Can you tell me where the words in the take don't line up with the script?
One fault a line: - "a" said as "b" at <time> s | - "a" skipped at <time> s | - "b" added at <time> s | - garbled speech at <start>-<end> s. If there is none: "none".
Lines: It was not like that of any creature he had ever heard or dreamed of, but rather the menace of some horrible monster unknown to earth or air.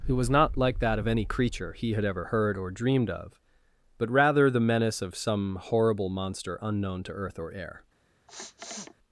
- "It" said as "Who" at 0.1 s